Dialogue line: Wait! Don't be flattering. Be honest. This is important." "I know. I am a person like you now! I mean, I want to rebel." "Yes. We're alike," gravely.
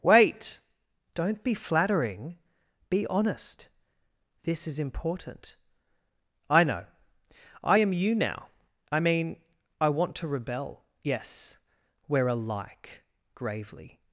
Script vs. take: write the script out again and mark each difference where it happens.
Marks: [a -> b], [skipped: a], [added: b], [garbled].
Wait! Don't be flattering. Be honest. This is important." "I know. I am [skipped: a person like] you now! I mean, I want to rebel." "Yes. We're alike," gravely.